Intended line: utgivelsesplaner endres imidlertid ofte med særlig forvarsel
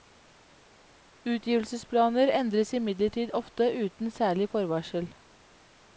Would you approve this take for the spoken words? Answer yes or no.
no